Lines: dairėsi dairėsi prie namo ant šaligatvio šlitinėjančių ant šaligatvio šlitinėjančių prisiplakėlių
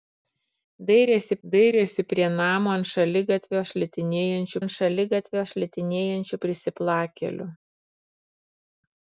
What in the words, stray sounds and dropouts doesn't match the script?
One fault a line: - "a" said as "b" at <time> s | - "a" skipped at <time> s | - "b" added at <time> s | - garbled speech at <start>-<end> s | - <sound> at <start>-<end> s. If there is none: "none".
none